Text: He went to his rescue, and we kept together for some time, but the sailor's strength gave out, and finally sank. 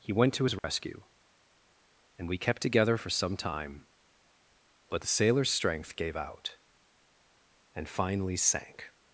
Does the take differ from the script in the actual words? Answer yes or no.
no